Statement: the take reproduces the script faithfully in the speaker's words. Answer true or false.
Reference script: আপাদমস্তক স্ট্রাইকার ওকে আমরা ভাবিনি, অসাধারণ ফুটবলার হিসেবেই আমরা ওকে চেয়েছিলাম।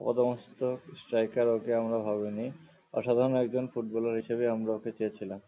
false